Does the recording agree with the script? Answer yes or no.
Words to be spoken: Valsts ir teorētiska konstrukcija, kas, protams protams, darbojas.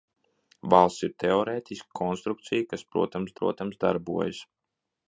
yes